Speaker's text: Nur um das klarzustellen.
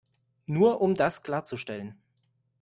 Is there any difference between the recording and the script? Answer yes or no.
no